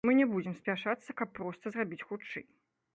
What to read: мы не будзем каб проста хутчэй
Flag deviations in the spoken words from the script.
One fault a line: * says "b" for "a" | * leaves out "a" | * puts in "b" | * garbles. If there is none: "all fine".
* puts in "спяшацца"
* puts in "зрабіць"